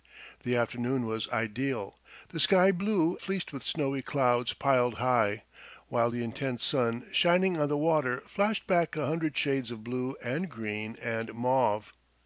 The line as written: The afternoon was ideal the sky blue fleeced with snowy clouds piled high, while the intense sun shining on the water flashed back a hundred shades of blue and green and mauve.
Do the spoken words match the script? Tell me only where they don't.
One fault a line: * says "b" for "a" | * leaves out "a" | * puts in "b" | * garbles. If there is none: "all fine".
all fine